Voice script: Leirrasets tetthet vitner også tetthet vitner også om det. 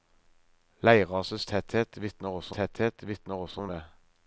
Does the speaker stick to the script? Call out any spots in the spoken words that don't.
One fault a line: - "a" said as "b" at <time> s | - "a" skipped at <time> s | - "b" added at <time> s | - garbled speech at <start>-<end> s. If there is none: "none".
none